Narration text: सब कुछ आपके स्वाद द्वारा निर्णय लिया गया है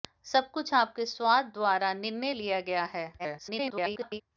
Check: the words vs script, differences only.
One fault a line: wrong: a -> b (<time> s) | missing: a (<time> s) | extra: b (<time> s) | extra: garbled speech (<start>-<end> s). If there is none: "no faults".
extra: garbled speech (3.2-4.2 s)